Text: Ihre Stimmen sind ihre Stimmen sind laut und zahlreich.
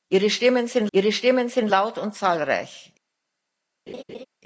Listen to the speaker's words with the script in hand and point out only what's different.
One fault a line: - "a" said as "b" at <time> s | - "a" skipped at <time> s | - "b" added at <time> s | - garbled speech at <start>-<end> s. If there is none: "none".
none